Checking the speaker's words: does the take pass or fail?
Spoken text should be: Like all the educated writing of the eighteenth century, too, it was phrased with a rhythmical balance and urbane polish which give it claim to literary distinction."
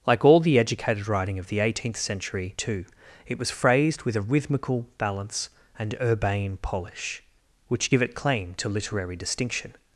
pass